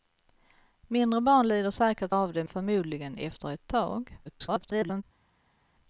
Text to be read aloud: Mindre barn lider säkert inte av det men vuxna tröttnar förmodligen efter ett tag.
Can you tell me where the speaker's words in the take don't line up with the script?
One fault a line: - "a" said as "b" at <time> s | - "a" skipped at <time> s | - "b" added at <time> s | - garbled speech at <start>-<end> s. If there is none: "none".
- "inte" skipped at 2.1 s
- "men vuxna tröttnar" skipped at 2.4 s
- garbled speech at 4.3-5.0 s